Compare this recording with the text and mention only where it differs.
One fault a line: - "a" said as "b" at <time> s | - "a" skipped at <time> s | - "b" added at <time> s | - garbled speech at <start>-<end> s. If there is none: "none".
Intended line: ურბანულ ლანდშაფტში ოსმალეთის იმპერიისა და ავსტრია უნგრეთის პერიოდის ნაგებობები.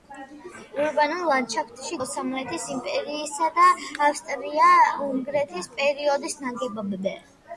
none